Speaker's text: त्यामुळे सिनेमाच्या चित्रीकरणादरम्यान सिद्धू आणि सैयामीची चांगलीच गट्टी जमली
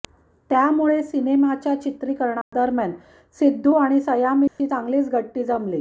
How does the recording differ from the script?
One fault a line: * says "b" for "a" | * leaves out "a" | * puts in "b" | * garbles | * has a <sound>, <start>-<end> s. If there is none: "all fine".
* has a dropout, 2.4-2.5 s
* has a dropout, 4.5-4.6 s